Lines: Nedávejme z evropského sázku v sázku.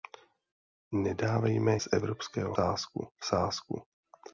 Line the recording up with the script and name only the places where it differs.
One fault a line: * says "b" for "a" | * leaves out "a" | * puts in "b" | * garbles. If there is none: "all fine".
all fine